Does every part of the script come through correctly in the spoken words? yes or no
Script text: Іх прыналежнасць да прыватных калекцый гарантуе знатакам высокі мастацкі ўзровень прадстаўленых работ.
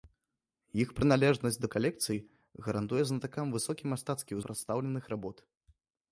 no